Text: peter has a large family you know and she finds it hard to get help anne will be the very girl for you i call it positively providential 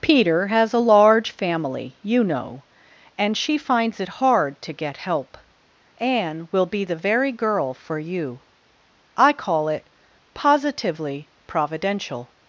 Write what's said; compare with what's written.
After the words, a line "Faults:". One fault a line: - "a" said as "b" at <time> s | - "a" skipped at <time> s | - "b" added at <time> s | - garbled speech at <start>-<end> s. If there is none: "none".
peter has a large family you know and she finds it hard to get help anne will be the very girl for you i call it positively providential
Faults:
none